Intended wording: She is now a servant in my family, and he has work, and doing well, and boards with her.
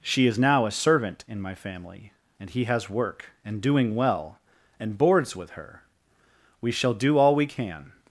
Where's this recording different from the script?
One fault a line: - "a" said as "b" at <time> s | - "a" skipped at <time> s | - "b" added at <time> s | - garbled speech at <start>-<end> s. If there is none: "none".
- "We shall do all we can" added at 6.6 s